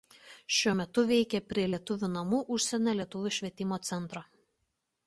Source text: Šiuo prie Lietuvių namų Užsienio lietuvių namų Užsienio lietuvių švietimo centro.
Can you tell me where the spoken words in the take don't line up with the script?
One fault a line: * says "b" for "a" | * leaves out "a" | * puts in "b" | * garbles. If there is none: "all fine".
* says "metu veikia prie" for "prie Lietuvių namų Užsienio"